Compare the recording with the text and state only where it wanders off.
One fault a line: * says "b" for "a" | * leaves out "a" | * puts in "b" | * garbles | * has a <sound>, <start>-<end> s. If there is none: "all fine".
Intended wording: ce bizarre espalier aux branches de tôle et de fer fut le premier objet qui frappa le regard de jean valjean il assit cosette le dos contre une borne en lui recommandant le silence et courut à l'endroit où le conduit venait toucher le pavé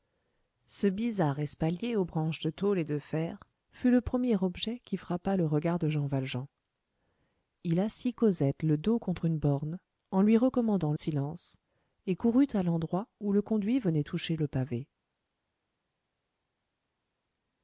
* leaves out "le"